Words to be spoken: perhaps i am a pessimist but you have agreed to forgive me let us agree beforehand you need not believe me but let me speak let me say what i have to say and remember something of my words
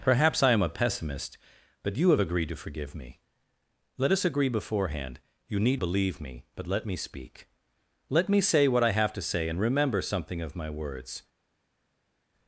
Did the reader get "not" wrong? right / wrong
wrong